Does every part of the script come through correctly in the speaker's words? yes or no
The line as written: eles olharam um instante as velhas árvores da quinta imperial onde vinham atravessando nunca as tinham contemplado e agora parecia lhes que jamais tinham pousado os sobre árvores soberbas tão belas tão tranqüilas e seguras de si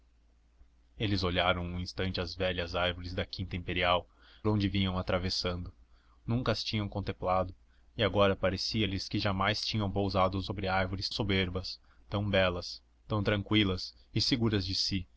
yes